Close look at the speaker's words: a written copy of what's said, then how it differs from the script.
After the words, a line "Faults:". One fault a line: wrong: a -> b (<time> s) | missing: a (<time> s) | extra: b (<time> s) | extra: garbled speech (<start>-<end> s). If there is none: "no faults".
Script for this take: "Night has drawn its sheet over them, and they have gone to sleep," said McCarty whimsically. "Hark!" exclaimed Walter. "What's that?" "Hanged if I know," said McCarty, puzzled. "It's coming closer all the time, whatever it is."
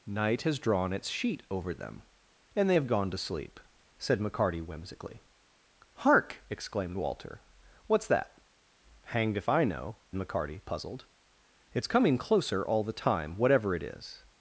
"Night has drawn its sheet over them, and they have gone to sleep," said McCarty whimsically. "Hark!" exclaimed Walter. "What's that?" "Hanged if I know," McCarty, puzzled. "It's coming closer all the time, whatever it is."
Faults:
missing: said (10.0 s)